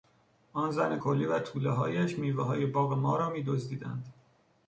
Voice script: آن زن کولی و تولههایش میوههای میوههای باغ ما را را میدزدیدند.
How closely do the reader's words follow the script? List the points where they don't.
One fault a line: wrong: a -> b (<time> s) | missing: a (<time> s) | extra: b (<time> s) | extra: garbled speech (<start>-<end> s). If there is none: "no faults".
missing: میوههای (2.7 s)
missing: را (3.3 s)